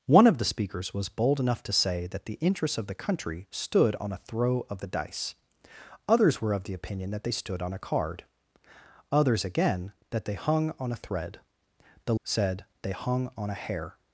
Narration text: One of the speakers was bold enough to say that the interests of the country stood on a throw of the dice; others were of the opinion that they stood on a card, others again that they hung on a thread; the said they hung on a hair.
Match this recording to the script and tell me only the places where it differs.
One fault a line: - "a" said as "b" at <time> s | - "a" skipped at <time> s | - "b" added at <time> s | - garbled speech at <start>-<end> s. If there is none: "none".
none